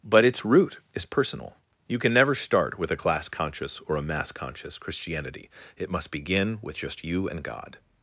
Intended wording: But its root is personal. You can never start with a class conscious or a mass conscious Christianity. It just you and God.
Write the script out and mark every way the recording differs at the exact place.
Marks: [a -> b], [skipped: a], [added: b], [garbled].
But its root is personal. You can never start with a class conscious or a mass conscious Christianity. It [added: must begin with] just you and God.